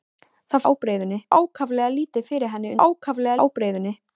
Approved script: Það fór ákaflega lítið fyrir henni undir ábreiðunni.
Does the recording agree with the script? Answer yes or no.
no